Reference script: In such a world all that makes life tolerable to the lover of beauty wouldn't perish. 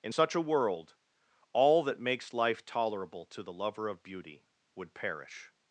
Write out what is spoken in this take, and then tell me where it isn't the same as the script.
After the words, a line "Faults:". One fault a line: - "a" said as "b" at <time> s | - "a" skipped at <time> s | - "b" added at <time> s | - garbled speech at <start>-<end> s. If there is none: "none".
In such a world all that makes life tolerable to the lover of beauty would perish.
Faults:
- "wouldn't" said as "would" at 4.7 s